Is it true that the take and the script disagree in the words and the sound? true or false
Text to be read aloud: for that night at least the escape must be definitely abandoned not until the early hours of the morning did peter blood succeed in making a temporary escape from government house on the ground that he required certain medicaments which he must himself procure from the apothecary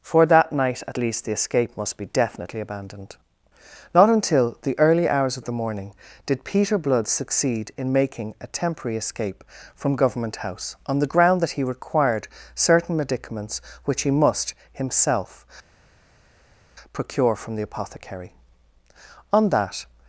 true